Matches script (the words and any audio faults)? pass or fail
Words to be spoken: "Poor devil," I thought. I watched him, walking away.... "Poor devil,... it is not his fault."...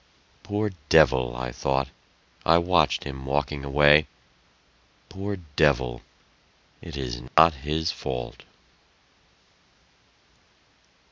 fail